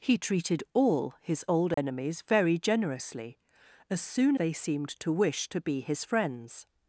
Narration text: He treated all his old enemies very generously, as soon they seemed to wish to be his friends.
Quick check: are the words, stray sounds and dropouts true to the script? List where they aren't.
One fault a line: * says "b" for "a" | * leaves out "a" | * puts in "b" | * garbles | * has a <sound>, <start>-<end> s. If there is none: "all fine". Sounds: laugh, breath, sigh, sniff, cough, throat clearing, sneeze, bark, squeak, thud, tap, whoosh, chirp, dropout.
* has a dropout, 1.7-1.8 s